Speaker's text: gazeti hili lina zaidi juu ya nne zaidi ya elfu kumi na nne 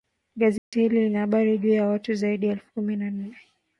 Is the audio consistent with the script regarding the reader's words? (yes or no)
no